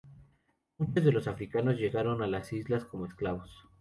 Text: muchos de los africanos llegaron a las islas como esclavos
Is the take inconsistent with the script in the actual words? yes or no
no